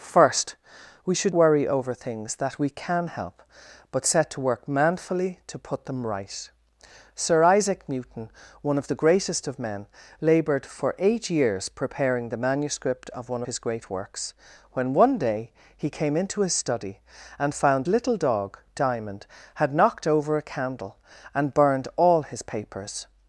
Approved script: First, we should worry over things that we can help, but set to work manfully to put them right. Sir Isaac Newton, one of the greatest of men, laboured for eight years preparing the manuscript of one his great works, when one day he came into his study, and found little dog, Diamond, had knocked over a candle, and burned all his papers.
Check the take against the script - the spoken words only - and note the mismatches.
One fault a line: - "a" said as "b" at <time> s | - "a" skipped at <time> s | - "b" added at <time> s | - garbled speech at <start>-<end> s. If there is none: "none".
none